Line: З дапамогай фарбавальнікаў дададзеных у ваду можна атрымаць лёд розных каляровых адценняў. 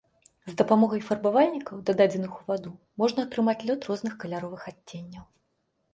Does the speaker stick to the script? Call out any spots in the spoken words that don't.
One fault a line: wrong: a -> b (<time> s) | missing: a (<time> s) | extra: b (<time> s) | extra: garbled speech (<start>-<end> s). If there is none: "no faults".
no faults